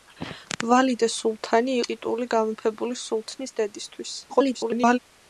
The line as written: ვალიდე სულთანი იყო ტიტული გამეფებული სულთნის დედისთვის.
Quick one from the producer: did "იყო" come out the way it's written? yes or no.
no